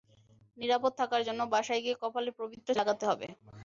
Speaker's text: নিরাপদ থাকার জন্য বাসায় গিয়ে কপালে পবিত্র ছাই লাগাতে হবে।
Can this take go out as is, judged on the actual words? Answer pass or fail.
fail